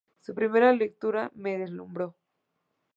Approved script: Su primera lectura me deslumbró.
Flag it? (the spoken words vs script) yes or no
no